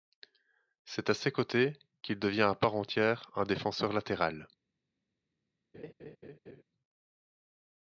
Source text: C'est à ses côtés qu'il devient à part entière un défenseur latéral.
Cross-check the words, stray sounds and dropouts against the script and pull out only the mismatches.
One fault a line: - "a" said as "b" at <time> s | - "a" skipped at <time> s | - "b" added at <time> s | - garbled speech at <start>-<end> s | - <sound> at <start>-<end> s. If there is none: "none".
- laugh at 5.7-6.6 s